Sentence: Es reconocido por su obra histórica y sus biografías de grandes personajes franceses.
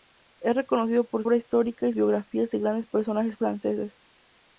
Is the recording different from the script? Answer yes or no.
yes